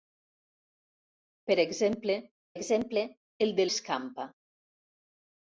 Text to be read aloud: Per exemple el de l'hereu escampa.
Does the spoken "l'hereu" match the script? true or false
false